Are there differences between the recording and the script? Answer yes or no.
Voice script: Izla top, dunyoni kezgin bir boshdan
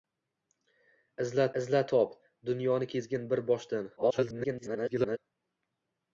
yes